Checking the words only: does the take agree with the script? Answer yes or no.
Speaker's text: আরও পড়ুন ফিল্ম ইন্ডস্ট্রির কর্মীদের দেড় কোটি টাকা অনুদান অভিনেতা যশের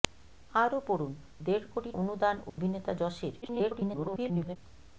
no